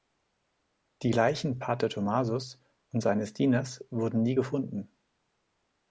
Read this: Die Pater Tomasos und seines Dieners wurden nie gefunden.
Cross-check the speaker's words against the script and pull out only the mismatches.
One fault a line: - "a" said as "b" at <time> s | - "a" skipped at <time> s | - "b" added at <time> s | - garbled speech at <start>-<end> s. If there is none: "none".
- "Leichen" added at 1.1 s